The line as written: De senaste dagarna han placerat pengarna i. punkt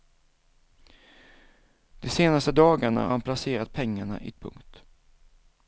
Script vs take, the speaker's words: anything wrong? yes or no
no